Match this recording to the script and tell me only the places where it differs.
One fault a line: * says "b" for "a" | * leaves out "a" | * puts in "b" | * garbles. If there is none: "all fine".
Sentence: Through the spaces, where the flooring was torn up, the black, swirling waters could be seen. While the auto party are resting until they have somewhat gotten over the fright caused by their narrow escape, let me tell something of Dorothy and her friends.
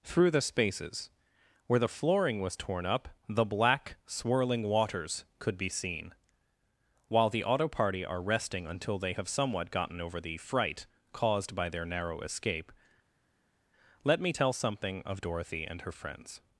all fine